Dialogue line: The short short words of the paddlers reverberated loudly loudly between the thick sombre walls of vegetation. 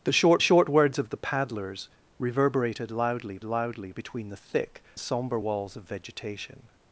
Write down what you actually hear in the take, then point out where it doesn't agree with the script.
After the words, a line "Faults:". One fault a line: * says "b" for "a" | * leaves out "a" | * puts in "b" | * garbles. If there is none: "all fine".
The short short words of the paddlers reverberated loudly loudly between the thick sombre walls of vegetation.
Faults:
all fine